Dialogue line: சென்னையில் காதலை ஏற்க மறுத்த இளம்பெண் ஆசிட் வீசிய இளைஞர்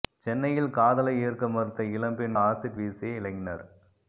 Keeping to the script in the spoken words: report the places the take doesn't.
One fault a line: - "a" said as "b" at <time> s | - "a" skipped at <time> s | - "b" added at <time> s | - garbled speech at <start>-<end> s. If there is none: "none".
none